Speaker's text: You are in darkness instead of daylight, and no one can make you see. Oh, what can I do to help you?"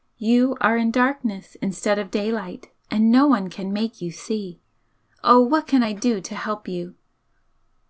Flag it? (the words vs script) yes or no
no